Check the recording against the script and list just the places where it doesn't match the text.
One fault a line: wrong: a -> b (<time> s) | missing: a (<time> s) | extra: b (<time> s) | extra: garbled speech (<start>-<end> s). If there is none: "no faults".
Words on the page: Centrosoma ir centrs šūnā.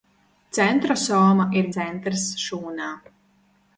no faults